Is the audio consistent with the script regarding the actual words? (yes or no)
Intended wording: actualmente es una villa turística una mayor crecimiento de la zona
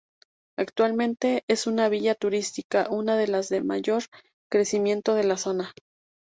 no